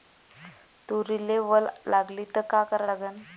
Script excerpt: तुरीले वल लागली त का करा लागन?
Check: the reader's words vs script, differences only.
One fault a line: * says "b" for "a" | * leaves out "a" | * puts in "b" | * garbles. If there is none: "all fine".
all fine